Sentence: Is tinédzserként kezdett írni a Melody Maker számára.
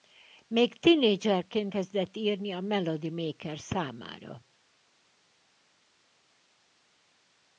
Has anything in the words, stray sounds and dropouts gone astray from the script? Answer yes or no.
yes